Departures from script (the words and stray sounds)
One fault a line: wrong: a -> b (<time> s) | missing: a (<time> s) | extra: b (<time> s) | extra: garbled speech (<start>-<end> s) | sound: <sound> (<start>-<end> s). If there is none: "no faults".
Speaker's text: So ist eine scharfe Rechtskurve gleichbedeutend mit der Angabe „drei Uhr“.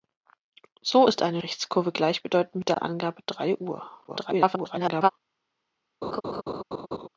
missing: scharfe (1.4 s)
extra: garbled speech (4.1-5.1 s)
sound: laugh (6.0-7.1 s)